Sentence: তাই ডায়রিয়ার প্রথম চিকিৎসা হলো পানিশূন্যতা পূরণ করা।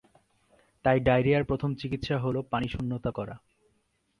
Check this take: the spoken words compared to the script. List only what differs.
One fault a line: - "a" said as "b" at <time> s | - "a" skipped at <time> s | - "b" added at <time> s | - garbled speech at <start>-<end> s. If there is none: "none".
- "পূরণ" skipped at 3.1 s